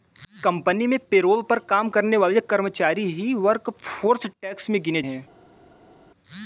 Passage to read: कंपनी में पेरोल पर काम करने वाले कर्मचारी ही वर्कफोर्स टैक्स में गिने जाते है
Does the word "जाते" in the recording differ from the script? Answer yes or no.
yes